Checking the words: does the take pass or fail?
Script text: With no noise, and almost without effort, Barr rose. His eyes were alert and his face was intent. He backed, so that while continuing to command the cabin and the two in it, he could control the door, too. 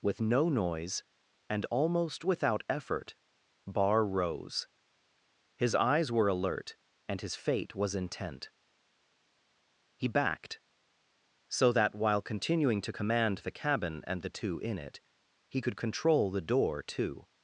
fail